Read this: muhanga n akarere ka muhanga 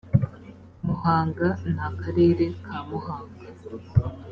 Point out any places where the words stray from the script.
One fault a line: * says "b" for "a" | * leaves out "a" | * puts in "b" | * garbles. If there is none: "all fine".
all fine